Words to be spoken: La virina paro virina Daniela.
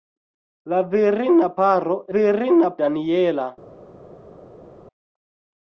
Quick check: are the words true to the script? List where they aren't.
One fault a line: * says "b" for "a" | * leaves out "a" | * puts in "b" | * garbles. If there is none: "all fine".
all fine